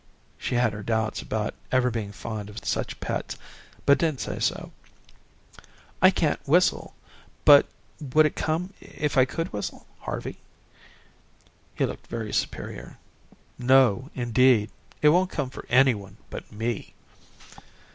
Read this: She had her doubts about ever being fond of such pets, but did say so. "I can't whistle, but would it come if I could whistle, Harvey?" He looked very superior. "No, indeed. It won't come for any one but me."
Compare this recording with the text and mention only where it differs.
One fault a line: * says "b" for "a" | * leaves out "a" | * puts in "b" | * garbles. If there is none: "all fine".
all fine